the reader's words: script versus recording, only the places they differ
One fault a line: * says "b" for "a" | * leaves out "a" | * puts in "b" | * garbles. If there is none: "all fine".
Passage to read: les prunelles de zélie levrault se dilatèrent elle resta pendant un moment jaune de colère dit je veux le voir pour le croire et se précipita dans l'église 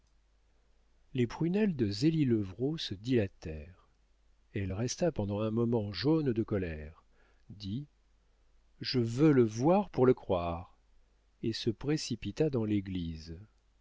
all fine